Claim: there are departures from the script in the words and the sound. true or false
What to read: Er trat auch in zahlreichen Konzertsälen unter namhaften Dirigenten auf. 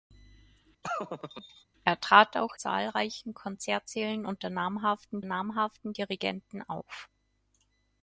true